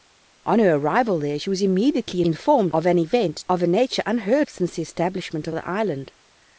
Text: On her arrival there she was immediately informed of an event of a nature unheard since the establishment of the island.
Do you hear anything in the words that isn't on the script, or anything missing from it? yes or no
no